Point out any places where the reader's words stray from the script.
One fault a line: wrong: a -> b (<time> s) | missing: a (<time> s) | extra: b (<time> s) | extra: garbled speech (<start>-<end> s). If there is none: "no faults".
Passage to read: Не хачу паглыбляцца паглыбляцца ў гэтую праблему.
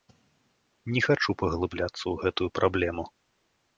missing: паглыбляцца (2.0 s)